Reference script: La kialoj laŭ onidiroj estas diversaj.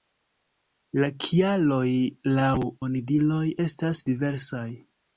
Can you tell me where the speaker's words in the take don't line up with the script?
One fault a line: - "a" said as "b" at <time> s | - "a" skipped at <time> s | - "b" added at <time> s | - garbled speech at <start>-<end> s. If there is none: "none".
none